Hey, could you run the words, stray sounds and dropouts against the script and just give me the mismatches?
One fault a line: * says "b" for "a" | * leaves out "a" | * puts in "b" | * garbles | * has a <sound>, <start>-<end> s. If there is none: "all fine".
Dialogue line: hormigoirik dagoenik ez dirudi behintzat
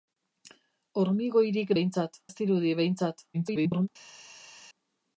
* says "behintzat" for "dagoenik"
* garbles